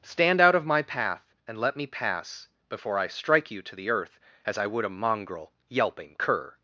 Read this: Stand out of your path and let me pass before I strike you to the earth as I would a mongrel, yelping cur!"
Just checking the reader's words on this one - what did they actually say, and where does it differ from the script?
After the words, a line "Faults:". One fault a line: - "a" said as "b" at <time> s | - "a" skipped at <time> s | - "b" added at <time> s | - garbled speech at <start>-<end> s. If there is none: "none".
Stand out of my path and let me pass before I strike you to the earth as I would a mongrel, yelping cur!"
Faults:
- "your" said as "my" at 0.7 s